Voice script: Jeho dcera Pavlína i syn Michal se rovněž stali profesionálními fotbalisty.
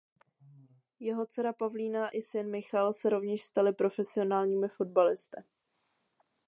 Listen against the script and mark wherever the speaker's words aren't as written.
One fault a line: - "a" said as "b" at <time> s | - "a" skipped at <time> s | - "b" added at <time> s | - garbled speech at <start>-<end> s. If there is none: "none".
none